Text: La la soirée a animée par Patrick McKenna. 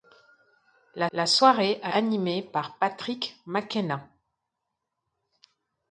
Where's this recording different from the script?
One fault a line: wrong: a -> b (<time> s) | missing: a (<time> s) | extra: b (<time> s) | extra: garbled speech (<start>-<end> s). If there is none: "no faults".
no faults